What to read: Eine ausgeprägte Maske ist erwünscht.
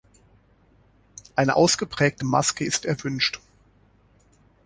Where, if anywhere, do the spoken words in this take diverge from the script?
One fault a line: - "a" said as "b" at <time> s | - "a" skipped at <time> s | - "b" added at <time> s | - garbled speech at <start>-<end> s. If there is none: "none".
none